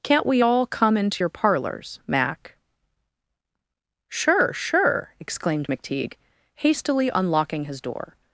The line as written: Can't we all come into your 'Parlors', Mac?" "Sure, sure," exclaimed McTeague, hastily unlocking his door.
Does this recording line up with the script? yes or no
yes